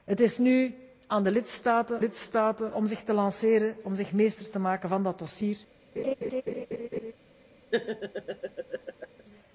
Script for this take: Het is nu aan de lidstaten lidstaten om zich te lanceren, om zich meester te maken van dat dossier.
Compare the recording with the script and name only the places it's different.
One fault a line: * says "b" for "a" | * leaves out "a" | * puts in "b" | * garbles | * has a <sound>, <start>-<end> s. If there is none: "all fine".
* has a laugh, 6.0-7.1 s
* has a laugh, 7.7-9.2 s